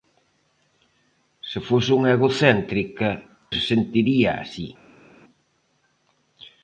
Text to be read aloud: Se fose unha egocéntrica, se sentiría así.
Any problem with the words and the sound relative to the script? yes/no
no